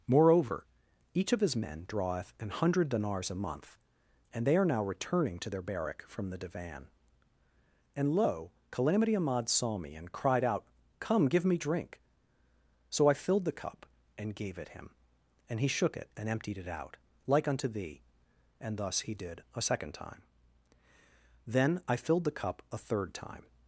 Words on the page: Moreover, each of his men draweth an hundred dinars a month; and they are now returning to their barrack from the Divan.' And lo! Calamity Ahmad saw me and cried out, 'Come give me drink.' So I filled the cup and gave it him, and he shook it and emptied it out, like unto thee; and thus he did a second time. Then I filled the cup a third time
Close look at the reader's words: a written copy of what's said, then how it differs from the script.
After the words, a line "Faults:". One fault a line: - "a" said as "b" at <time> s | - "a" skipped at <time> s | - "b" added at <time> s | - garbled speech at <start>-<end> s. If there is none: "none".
Moreover, each of his men draweth an hundred dinars a month; and they are now returning to their barrack from the Divan.' And lo! Calamity Ahmad saw me and cried out, 'Come give me drink.' So I filled the cup and gave it him, and he shook it and emptied it out, like unto thee; and thus he did a second time. Then I filled the cup a third time
Faults:
none